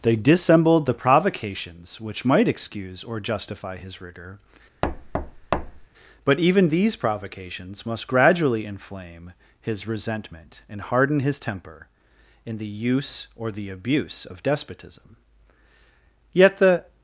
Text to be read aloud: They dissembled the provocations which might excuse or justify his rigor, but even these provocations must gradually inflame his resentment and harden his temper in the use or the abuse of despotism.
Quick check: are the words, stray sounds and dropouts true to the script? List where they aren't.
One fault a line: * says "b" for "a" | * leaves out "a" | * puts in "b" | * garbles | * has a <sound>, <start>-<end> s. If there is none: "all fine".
* has a thud, 4.8-5.9 s
* puts in "Yet the"